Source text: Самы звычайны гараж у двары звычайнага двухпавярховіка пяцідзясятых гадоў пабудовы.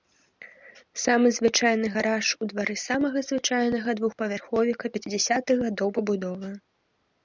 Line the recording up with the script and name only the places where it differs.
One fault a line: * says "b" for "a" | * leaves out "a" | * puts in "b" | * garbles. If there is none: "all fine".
* puts in "самага"